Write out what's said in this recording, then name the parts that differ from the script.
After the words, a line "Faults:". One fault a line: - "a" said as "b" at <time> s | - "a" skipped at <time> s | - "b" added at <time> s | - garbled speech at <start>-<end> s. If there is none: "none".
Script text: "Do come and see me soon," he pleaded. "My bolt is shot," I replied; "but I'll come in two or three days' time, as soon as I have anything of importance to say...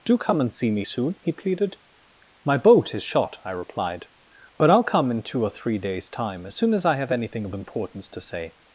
"Do come and see me soon," he pleaded. "My boat is shot," I replied; "but I'll come in two or three days' time, as soon as I have anything of importance to say...
Faults:
- "bolt" said as "boat" at 2.6 s